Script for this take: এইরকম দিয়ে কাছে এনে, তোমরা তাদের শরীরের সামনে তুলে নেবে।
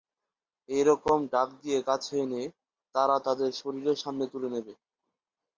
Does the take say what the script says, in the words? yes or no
no